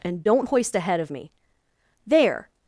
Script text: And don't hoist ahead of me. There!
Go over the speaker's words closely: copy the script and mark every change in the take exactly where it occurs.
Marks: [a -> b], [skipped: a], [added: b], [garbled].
And don't hoist ahead of me. There!